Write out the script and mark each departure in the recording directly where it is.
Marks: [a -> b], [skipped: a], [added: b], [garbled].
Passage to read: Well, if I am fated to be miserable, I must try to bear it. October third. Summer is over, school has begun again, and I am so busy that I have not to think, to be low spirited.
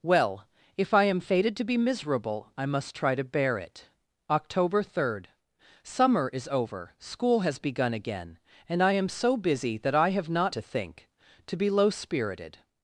Well, if I am fated to be miserable, I must try to bear it. October third. Summer is over, school has begun again, and I am so busy that I have not to think, to be low spirited.